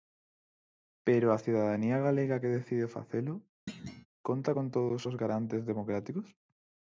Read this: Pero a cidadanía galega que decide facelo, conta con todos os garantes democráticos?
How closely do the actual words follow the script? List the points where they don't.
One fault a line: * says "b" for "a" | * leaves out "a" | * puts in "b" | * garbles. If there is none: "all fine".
all fine